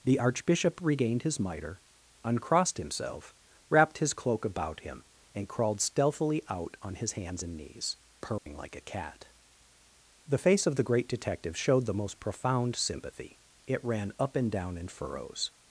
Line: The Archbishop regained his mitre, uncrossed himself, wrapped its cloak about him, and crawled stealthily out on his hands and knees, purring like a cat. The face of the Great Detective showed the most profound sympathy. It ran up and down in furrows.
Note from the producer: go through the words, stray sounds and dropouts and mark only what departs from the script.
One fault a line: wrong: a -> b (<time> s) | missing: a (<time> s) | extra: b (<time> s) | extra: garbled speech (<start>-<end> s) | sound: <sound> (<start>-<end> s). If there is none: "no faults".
wrong: its -> his (4.0 s)
sound: dropout (8.4-8.5 s)